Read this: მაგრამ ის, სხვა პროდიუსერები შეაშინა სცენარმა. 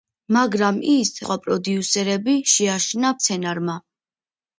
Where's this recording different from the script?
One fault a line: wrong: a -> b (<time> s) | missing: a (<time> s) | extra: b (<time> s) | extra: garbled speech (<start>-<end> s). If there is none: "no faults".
no faults